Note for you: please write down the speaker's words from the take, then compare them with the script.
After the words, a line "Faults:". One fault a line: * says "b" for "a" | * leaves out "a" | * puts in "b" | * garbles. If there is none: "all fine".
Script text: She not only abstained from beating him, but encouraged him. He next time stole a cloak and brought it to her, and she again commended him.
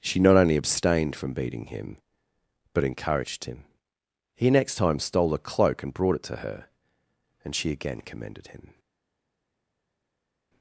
She not only abstained from beating him, but encouraged him. He next time stole a cloak and brought it to her, and she again commended him.
Faults:
all fine